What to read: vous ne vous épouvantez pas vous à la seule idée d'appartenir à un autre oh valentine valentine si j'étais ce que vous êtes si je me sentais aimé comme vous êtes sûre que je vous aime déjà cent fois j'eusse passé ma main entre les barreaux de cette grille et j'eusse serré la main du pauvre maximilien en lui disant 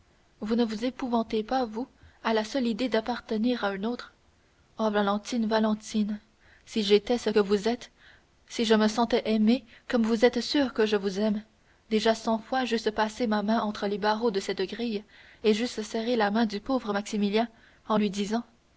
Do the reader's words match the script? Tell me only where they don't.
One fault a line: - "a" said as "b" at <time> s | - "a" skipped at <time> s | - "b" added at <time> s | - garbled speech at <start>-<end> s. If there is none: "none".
none